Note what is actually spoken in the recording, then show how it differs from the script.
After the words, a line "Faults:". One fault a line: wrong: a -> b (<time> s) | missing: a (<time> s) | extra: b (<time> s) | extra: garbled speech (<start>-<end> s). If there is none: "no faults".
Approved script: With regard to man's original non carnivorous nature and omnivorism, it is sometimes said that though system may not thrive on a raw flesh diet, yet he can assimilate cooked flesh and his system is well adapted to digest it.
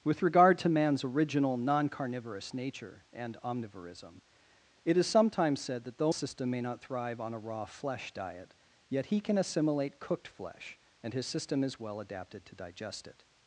With regard to man's original non carnivorous nature and omnivorism, it is sometimes said that though system may not thrive on a raw flesh diet, yet he can assimilate cooked flesh and his system is well adapted to digest it.
Faults:
no faults